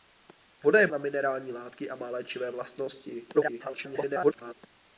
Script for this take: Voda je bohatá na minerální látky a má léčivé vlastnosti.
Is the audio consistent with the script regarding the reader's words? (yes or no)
no